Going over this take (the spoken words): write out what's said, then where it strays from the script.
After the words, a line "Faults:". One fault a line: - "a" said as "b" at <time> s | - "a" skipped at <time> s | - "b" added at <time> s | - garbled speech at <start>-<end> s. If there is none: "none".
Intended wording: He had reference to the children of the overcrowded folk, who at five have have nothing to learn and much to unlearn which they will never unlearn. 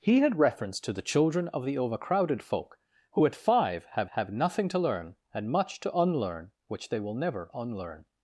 He had reference to the children of the overcrowded folk, who at five have have nothing to learn and much to unlearn which they will never unlearn.
Faults:
none